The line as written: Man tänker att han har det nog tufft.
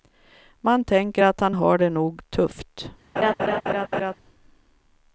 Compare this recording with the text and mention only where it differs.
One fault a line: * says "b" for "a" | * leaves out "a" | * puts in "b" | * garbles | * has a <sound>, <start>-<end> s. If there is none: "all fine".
* has a laugh, 3.2-4.2 s